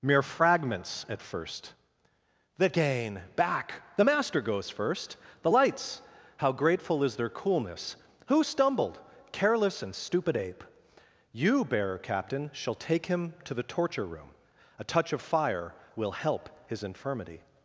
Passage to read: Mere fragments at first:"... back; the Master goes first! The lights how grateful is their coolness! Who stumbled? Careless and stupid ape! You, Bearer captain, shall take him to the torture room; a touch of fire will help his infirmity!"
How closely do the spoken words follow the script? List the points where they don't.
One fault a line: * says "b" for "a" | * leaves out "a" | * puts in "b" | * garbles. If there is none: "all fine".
* puts in "the gain"